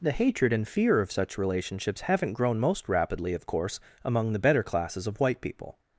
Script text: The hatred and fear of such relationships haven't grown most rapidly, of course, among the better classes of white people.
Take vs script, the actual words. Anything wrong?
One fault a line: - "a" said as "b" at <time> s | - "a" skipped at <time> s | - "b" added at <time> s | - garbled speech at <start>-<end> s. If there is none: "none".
none